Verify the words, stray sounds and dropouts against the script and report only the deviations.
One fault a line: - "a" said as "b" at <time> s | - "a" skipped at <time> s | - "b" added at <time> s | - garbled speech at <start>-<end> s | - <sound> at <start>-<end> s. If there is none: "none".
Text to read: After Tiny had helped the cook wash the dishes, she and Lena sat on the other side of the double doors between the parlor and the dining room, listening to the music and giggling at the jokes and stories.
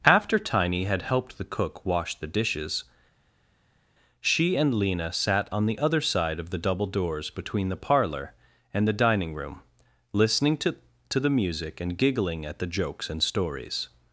- "to" added at 11.1 s